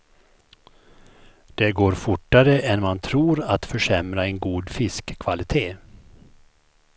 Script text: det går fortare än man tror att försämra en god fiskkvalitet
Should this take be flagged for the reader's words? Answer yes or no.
no